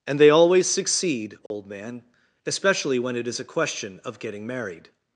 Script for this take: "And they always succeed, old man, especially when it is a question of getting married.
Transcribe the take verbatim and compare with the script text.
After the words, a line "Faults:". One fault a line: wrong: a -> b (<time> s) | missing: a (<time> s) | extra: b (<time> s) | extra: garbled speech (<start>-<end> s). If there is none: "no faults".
"And they always succeed, old man, especially when it is a question of getting married.
Faults:
no faults